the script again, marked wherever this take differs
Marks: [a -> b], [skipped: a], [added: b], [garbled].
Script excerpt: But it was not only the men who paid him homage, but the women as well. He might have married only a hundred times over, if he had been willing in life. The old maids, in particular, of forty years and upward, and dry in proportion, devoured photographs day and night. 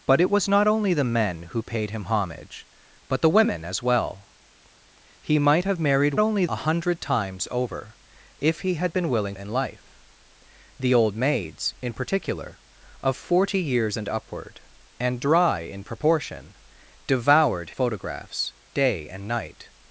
But it was not only the men who paid him homage, but the women as well. He might have married only a hundred times over, if he had been willing in life. The old maids, in particular, of forty years and upward, and dry in proportion, devoured photographs day and night.